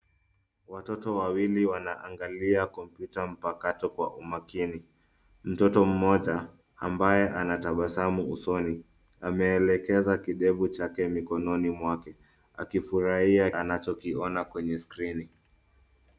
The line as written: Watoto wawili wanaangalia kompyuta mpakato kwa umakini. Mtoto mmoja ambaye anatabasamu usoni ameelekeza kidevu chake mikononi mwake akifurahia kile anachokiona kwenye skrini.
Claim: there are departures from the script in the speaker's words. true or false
true